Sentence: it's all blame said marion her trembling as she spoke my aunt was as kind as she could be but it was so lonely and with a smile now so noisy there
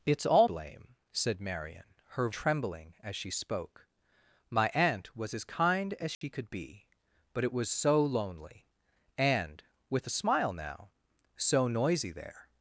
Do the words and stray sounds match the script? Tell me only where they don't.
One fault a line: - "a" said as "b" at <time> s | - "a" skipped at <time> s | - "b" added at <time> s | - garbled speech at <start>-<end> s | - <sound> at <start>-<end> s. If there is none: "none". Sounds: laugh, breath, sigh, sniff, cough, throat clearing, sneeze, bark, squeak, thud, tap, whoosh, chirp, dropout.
- dropout at 6.1-6.2 s